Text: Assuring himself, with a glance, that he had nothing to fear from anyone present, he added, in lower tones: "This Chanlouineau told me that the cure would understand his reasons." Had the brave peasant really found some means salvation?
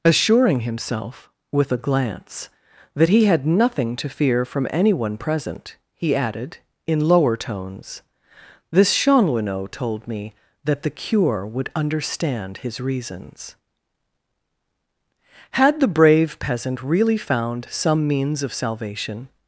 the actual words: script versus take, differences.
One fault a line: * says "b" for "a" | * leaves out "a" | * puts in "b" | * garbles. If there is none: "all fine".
* puts in "of"